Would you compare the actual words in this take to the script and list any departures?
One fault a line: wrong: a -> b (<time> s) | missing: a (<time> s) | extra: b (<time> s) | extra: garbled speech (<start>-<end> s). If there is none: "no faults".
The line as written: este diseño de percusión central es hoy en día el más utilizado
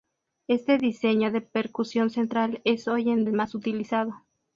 missing: día (3.3 s)